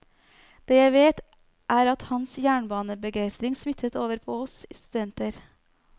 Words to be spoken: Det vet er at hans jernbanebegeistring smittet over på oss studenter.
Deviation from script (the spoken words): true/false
true